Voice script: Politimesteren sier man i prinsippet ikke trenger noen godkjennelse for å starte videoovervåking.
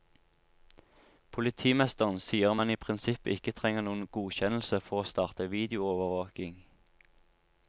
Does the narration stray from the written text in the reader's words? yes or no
no